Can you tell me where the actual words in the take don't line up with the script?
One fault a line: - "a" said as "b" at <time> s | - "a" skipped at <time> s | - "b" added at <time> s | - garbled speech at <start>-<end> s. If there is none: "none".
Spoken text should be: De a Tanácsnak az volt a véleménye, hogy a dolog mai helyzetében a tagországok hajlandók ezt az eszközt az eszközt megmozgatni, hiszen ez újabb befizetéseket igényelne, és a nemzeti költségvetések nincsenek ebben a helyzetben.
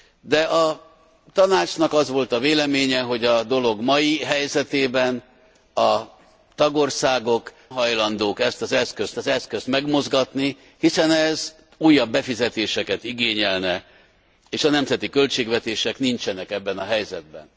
none